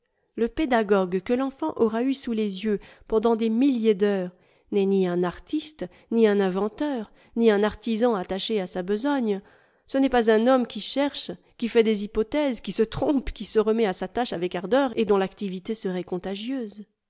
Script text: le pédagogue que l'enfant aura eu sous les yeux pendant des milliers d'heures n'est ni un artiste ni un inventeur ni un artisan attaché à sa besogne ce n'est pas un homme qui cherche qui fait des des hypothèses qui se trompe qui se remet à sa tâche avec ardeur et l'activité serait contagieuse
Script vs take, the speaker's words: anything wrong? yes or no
yes